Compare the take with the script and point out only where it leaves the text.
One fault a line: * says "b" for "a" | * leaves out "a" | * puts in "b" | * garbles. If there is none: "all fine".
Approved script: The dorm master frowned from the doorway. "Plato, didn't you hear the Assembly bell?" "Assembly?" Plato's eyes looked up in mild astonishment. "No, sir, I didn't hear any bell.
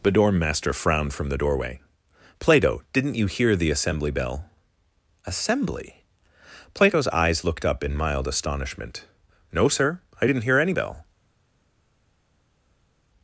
all fine